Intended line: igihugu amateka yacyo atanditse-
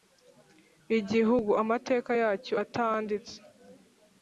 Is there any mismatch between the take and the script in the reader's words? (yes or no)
no